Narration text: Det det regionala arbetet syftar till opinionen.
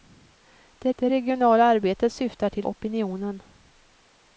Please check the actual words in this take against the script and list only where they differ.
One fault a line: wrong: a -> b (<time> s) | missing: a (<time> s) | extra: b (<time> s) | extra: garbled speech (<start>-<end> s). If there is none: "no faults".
no faults